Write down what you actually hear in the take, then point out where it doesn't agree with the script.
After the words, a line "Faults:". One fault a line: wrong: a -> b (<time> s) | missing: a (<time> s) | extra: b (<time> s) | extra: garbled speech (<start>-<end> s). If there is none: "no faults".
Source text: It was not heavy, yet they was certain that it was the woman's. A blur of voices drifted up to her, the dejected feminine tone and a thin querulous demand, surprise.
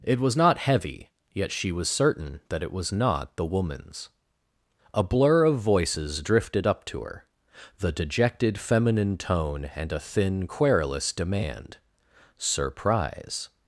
It was not heavy, yet she was certain that it was not the woman's. A blur of voices drifted up to her, the dejected feminine tone and a thin querulous demand, surprise.
Faults:
wrong: they -> she (1.5 s)
extra: not (2.9 s)